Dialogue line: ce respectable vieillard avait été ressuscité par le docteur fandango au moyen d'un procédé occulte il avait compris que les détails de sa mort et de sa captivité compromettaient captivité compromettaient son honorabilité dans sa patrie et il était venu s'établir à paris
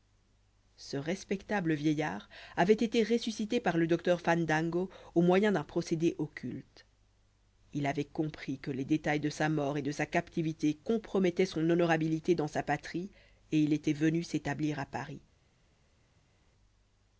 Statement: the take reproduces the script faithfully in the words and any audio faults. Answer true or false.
false